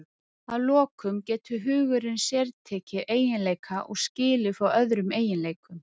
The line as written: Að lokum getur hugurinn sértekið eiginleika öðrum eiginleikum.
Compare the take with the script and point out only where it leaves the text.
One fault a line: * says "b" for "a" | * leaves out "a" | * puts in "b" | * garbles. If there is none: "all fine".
* puts in "og skilið frá"